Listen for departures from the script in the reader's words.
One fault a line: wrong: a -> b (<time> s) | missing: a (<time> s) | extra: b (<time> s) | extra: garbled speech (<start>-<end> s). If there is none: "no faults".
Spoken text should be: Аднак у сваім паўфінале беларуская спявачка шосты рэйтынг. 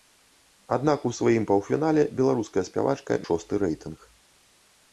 no faults